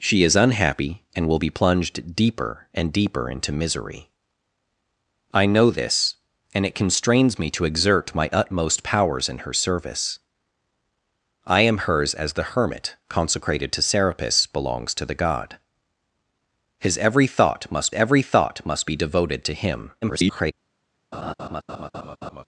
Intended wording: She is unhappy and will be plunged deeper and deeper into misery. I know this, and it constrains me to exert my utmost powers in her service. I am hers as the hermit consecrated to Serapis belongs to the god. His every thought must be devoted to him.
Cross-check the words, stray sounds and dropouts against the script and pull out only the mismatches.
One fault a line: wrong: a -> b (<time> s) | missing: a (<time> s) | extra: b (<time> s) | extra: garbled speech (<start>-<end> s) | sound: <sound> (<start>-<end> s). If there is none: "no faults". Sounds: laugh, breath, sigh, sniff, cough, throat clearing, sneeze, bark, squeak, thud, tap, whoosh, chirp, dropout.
extra: every thought must (17.9 s)
extra: garbled speech (20.0-20.5 s)
sound: laugh (21.1-22.4 s)